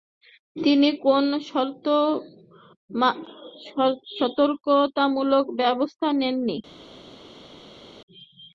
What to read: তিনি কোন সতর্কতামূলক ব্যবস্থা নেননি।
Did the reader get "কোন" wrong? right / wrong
right